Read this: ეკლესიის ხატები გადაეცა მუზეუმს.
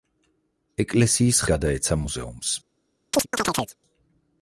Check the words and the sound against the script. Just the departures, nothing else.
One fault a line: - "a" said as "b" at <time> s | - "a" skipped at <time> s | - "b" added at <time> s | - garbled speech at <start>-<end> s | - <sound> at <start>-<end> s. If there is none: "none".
- "ხატები" skipped at 1.4 s
- chirp at 3.1-3.8 s